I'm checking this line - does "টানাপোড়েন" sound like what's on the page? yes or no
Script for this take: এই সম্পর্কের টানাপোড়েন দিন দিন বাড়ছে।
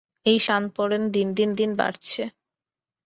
no